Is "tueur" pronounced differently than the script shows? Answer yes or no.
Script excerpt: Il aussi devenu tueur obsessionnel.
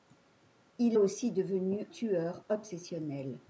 no